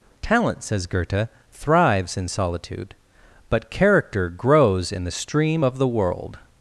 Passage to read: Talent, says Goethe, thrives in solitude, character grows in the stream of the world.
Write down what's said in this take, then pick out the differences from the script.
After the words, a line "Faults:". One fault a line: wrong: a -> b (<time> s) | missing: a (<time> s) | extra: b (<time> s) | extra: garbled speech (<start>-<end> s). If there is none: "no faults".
Talent, says Goethe, thrives in solitude, but character grows in the stream of the world.
Faults:
extra: but (3.5 s)